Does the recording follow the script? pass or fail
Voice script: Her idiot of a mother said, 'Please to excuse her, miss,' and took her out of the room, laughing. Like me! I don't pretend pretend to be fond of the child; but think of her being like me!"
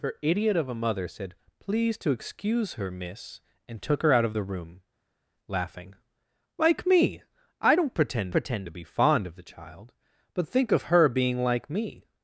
pass